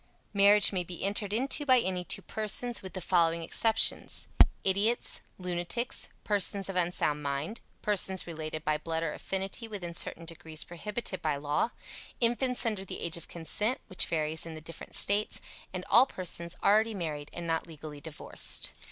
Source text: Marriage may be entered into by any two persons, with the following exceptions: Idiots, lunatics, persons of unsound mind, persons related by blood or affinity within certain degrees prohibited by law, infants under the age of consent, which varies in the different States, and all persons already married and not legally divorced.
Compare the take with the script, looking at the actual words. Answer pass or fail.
pass